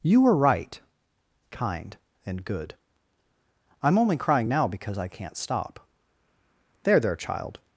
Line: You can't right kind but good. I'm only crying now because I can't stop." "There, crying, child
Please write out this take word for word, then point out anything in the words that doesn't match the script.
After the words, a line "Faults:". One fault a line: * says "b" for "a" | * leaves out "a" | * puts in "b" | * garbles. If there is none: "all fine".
You were right kind and good. I'm only crying now because I can't stop." "There, there, child
Faults:
* says "were" for "can't"
* says "and" for "but"
* says "there" for "crying"